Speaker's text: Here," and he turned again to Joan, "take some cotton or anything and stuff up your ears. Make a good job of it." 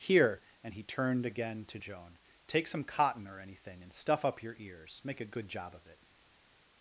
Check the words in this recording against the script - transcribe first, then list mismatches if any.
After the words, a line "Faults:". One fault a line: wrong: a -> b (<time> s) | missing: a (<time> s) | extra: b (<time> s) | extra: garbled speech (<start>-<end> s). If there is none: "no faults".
Here," and he turned again to Joan, "take some cotton or anything and stuff up your ears. Make a good job of it."
Faults:
no faults